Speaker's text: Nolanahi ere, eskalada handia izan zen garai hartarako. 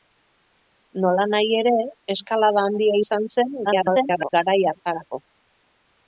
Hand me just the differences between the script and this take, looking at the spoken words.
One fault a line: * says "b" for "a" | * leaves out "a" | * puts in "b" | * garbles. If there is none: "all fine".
* garbles